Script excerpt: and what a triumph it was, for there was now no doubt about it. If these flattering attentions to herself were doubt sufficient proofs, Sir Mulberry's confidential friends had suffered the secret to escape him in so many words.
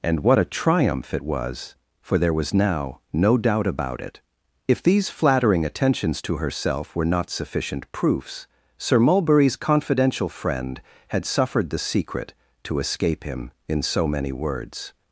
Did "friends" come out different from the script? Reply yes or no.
yes